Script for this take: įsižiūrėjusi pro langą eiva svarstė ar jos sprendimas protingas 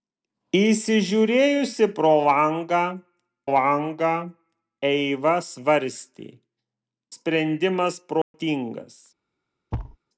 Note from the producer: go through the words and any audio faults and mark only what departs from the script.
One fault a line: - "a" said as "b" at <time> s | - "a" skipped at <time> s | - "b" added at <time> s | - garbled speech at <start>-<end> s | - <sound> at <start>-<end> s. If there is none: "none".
- "langą" added at 3.5 s
- "ar jos" skipped at 6.3 s
- dropout at 8.2-8.3 s
- thud at 9.7-10.0 s